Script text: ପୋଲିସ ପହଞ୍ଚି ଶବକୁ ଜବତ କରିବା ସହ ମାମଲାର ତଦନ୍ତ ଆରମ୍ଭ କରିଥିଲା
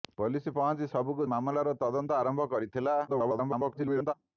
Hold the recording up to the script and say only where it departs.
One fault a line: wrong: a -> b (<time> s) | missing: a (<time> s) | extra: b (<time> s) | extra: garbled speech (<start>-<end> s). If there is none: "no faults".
missing: ଜବତ କରିବା ସହ (1.3 s)
extra: garbled speech (3.1-4.1 s)